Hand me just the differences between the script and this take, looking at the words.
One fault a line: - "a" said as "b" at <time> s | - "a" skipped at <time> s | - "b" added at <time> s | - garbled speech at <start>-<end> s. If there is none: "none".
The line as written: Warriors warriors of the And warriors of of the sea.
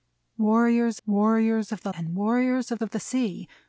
none